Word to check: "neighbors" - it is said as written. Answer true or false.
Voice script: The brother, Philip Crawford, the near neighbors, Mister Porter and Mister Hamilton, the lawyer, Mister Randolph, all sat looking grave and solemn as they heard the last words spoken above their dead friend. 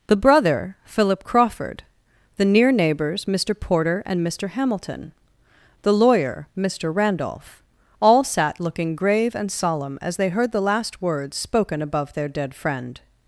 true